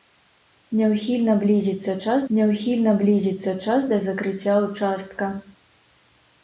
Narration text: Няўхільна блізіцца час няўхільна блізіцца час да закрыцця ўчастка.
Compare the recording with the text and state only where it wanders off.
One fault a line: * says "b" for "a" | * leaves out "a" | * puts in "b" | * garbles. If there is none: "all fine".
all fine